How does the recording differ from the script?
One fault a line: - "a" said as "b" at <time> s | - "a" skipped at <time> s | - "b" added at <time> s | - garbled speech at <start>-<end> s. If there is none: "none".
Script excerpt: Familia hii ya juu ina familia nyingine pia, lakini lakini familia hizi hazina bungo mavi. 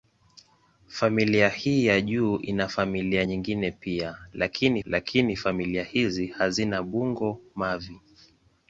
none